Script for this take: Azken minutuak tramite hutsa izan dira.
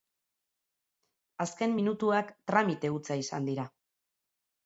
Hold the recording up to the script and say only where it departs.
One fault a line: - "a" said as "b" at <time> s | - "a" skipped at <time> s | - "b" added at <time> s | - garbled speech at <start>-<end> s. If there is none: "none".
none